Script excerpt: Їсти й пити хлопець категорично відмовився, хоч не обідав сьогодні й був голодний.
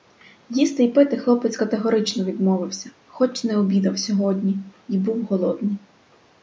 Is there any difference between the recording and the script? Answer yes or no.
no